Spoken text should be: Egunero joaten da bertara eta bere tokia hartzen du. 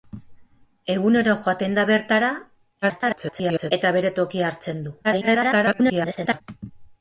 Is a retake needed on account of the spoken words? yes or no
yes